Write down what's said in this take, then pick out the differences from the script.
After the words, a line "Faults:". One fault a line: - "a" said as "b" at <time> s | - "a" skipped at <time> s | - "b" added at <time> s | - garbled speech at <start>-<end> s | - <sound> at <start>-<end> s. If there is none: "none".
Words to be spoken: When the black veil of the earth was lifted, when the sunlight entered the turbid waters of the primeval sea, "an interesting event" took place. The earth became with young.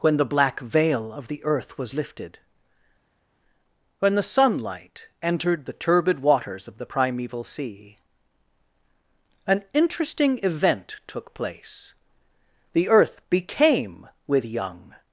When the black veil of the earth was lifted, when the sunlight entered the turbid waters of the primeval sea, "an interesting event" took place. The earth became with young.
Faults:
none